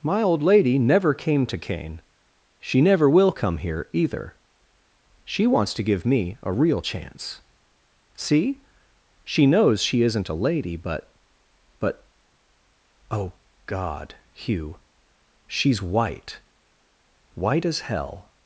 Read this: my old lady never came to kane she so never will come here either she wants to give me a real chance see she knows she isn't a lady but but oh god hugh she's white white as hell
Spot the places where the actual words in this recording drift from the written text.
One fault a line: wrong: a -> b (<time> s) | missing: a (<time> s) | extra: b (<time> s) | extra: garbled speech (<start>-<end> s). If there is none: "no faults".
missing: so (2.8 s)